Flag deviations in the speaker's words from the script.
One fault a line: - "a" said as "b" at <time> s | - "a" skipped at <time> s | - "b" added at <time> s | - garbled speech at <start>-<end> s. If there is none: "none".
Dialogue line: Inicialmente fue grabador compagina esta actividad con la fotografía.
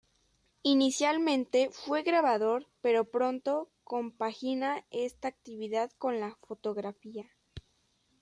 - "pero pronto" added at 2.8 s